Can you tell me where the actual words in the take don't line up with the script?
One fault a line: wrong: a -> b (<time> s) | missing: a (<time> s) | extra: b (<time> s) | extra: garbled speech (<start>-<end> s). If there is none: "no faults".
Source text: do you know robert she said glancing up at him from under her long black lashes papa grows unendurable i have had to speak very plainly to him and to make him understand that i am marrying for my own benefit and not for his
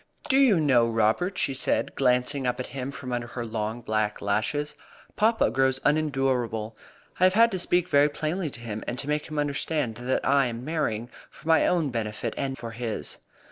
missing: not (12.6 s)